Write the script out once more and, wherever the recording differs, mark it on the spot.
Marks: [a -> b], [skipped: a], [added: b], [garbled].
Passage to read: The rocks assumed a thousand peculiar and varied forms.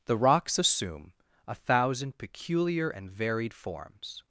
The rocks [assumed -> assume] a thousand peculiar and varied forms.